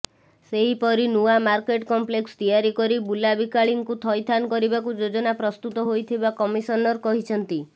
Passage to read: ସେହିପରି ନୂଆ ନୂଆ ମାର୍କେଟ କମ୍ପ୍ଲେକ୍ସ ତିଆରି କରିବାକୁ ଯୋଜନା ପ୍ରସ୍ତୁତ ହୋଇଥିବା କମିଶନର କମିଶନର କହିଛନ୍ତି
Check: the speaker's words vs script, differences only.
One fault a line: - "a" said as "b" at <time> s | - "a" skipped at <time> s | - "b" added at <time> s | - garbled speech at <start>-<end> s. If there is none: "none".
- "ନୂଆ" skipped at 1.3 s
- "କରି ବୁଲାବିକାଳୀଙ୍କୁ ଥଇଥାନ" added at 2.8 s
- "କମିଶନର" skipped at 7.0 s